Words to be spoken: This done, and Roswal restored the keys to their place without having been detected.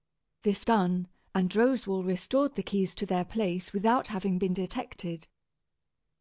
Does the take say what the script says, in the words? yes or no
yes